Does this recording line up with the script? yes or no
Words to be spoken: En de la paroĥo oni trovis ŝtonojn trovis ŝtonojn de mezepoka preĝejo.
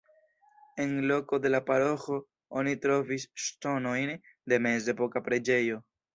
no